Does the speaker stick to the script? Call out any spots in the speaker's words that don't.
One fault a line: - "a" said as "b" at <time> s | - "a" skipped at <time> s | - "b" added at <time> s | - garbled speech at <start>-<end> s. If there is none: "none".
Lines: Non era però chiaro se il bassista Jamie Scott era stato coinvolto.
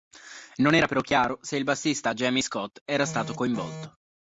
none